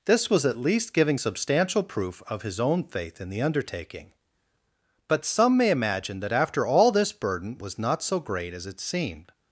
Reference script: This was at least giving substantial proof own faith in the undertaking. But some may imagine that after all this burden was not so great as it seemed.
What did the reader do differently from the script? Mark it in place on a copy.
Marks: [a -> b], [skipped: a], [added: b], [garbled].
This was at least giving substantial proof [added: of his] own faith in the undertaking. But some may imagine that after all this burden was not so great as it seemed.